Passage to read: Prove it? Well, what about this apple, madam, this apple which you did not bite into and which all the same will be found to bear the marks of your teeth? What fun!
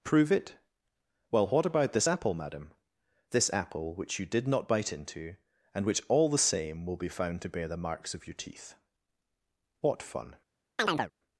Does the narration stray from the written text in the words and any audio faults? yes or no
yes